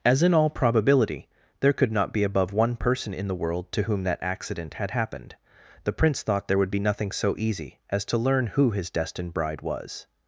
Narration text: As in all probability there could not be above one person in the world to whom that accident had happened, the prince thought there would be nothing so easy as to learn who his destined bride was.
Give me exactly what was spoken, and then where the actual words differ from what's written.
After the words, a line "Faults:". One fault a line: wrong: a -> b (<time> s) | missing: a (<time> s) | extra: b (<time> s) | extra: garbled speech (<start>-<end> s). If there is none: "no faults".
As in all probability there could not be above one person in the world to whom that accident had happened, the prince thought there would be nothing so easy as to learn who his destined bride was.
Faults:
no faults